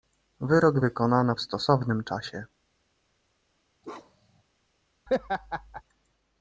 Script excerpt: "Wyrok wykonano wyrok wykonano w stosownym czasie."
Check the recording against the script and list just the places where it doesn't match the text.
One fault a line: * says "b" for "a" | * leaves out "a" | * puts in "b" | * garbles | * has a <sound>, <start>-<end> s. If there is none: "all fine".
* leaves out "wyrok wykonano"
* has a bark, 3.8-4.4 s
* has a laugh, 5.1-5.8 s